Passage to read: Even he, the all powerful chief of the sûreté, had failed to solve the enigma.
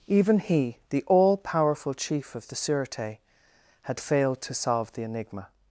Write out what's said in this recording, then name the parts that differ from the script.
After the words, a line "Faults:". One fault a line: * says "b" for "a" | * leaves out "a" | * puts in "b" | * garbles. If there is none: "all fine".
Even he, the all powerful chief of the sûreté, had failed to solve the enigma.
Faults:
all fine